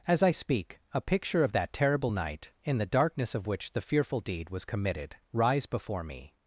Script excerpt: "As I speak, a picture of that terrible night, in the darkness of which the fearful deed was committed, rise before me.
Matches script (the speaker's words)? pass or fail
pass